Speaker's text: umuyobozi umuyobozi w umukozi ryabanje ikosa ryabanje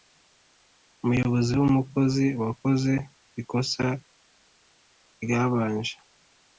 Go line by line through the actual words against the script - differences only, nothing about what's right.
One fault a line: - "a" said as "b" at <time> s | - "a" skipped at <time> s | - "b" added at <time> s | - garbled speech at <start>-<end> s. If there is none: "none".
- "umuyobozi" skipped at 1.5 s
- "ryabanje" said as "wakoze" at 2.4 s